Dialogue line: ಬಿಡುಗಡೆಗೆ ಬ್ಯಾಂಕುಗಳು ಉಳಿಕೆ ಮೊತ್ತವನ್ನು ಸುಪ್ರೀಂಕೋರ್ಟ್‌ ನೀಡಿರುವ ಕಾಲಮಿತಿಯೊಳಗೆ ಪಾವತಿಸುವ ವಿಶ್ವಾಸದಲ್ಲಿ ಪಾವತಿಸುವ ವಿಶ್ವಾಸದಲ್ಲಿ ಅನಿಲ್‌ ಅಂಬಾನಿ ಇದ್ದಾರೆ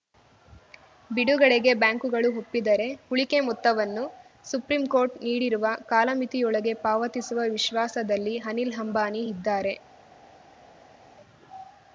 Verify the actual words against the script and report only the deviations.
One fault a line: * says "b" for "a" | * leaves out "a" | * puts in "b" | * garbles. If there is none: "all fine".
* puts in "ಒಪ್ಪಿದರೆ"
* leaves out "ಪಾವತಿಸುವ ವಿಶ್ವಾಸದಲ್ಲಿ"